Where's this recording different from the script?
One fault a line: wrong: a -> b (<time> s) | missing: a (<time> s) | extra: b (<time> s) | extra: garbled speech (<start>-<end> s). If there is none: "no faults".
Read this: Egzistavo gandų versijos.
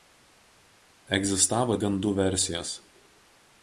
no faults